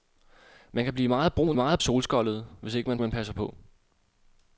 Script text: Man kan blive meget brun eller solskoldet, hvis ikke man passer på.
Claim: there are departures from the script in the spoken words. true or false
true